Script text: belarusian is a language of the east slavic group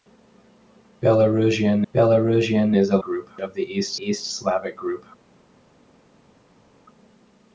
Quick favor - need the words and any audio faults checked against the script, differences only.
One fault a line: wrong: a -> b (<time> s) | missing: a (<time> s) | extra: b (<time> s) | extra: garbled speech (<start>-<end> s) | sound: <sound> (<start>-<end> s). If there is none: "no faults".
extra: belarusian (1.9 s)
wrong: language -> group (3.0 s)
extra: east (3.9 s)